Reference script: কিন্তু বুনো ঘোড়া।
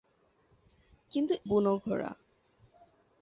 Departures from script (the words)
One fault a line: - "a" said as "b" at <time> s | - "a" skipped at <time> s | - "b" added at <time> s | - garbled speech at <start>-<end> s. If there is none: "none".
none